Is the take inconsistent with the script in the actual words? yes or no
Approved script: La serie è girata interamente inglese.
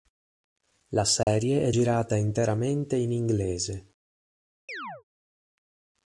yes